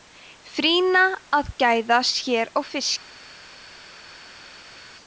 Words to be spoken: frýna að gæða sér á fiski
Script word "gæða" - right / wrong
right